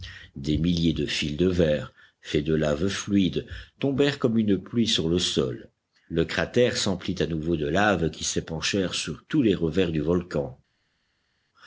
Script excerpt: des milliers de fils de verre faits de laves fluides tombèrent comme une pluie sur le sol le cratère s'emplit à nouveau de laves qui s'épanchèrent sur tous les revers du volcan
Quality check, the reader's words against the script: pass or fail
pass